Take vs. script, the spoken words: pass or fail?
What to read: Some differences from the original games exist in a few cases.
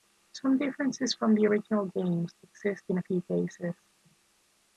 pass